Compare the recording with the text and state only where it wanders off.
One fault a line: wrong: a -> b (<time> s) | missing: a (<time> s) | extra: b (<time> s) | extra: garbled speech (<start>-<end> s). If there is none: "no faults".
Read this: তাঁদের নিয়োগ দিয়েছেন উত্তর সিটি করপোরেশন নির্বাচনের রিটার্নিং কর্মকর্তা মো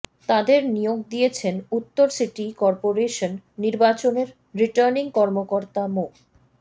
no faults